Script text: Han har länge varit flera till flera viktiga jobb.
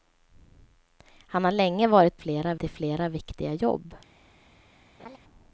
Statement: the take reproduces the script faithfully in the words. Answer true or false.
true